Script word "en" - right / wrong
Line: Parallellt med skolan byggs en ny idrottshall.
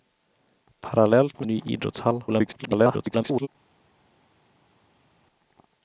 wrong